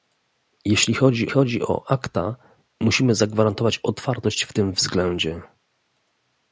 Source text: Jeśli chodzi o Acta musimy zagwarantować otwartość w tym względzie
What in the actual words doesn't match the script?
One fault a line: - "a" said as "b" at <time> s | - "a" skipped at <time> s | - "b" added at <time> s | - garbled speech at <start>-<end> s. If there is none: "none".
- "chodzi" added at 1.3 s